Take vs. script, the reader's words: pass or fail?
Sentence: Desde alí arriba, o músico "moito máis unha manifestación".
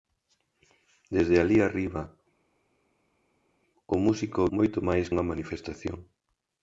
pass